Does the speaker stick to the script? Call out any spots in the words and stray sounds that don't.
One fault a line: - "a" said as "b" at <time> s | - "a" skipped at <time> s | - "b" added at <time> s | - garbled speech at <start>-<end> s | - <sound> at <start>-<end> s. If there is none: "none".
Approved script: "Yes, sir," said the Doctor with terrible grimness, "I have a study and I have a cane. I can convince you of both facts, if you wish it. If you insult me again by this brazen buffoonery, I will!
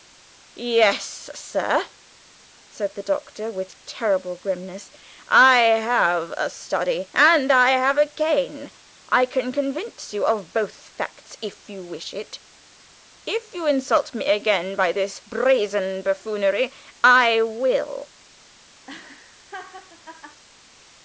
- laugh at 18.9-20.4 s